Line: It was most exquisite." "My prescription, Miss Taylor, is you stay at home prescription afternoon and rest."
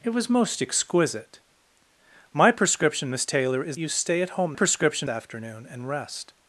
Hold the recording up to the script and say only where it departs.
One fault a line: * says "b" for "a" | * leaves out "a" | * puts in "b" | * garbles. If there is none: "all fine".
all fine